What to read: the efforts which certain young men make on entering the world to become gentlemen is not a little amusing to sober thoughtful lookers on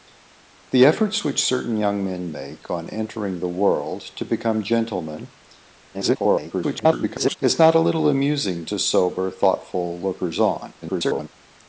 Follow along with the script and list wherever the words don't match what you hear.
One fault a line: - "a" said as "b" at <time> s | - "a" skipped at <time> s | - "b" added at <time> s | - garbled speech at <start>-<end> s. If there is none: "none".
- garbled speech at 5.9-7.4 s
- garbled speech at 10.8-11.3 s